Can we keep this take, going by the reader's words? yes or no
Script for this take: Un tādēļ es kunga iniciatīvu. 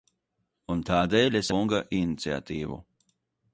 yes